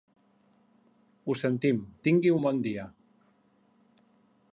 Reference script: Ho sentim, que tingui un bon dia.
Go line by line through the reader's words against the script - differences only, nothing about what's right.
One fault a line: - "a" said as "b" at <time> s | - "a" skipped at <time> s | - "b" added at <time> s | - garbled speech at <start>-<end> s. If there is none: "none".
- "que" skipped at 1.8 s